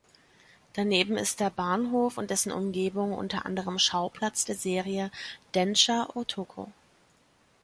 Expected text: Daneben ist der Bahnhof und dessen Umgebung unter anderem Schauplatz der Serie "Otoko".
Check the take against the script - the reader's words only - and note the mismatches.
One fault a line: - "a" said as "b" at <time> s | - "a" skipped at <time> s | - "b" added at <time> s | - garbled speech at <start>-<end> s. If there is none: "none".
- "Densha" added at 5.5 s